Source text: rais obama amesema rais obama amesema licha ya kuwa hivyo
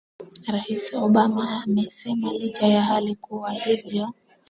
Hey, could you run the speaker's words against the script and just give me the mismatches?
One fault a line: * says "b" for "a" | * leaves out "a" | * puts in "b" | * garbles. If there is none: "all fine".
* leaves out "rais obama amesema"
* puts in "hali"